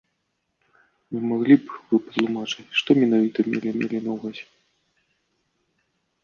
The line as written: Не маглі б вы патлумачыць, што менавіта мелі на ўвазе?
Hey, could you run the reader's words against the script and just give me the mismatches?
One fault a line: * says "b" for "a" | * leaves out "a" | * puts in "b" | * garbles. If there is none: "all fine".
* puts in "мелі"